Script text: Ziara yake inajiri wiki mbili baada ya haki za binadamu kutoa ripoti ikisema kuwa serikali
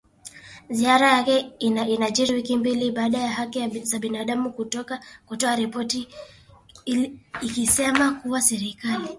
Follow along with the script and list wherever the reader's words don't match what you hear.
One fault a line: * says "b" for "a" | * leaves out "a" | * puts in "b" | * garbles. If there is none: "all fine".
all fine